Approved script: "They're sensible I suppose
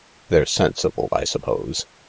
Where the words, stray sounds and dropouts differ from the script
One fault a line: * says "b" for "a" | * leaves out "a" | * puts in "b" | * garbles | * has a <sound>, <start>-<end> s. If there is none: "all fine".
all fine